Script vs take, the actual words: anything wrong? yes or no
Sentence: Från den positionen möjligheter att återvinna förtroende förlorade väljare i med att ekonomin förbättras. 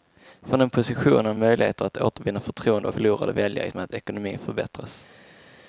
no